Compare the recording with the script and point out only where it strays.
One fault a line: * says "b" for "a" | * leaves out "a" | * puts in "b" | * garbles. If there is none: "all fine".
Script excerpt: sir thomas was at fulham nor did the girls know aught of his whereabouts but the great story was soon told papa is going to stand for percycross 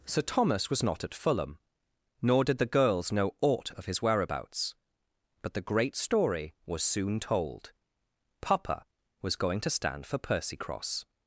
* puts in "not"
* says "was" for "is"